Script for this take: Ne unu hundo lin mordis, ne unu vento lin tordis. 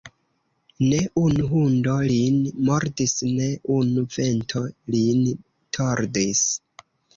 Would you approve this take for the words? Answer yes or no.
yes